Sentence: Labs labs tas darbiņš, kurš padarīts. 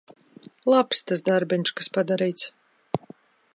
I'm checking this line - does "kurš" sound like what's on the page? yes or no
no